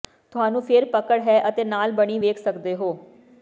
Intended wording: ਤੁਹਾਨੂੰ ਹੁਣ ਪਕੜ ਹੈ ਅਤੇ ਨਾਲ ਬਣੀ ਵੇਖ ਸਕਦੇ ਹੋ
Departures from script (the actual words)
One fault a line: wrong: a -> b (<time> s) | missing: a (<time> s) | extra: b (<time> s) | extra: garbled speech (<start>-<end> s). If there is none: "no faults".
wrong: ਹੁਣ -> ਫਿਰ (0.6 s)